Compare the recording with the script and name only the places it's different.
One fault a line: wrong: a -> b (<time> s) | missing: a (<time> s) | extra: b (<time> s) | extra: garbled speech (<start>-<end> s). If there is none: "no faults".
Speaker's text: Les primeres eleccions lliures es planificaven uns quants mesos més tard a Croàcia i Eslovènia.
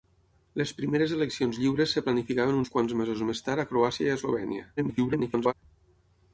extra: garbled speech (4.8-5.5 s)